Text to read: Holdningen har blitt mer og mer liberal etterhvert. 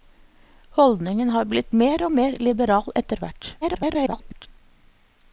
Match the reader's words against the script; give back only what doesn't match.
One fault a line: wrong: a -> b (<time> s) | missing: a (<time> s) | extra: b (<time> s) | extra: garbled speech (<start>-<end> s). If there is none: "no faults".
extra: garbled speech (3.6-4.5 s)